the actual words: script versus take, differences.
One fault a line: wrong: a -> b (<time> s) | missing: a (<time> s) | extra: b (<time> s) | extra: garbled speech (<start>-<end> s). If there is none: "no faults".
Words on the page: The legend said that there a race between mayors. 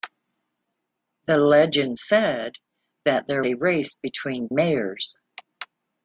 no faults